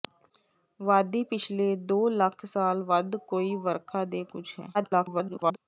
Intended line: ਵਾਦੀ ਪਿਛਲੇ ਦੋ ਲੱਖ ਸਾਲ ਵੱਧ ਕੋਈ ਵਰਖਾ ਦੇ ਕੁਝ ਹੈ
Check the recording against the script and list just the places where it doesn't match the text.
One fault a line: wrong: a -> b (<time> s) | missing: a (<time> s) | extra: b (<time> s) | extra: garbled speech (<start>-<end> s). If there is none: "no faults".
extra: garbled speech (4.7-5.6 s)